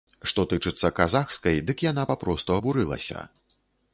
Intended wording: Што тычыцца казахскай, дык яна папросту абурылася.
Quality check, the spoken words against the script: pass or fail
pass